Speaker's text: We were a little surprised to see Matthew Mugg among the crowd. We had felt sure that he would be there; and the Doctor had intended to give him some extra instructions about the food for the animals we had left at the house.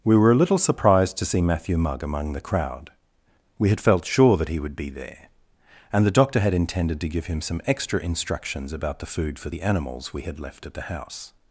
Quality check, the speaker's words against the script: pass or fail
pass